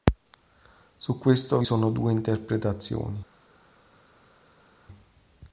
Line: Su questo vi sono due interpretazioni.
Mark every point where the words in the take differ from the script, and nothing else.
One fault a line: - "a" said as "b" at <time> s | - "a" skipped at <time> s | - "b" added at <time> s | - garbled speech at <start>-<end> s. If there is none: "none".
none